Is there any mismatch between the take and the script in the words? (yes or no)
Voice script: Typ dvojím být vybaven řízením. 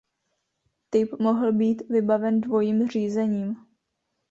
yes